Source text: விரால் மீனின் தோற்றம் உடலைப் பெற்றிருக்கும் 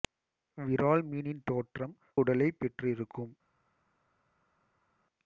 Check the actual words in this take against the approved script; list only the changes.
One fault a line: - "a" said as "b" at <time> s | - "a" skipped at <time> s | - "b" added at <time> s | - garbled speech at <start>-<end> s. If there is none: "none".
none